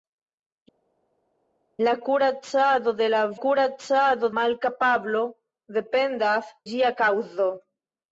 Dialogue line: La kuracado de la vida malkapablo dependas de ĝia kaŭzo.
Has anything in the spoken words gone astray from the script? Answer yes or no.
yes